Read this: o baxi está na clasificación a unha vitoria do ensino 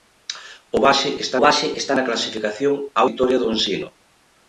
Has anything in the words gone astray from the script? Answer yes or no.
yes